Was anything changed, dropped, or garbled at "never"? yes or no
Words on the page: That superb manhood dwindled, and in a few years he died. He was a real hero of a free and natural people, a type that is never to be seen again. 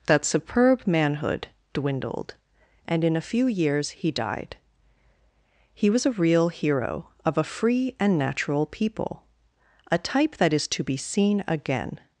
yes